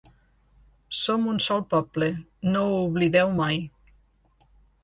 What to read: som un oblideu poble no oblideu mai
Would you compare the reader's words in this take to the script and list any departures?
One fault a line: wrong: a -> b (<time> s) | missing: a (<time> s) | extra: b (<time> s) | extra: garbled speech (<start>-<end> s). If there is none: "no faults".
wrong: oblideu -> sol (1.5 s)
extra: ho (2.7 s)